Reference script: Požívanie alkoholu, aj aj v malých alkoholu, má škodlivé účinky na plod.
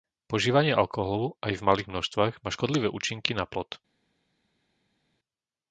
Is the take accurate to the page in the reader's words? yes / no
no